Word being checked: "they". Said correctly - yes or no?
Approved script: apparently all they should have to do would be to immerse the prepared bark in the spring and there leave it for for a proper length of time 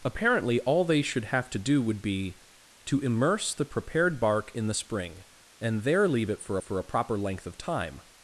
yes